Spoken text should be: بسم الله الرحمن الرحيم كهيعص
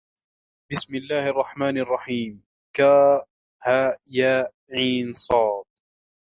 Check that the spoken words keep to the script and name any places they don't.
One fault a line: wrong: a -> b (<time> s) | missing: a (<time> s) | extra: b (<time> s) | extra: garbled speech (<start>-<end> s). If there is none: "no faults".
no faults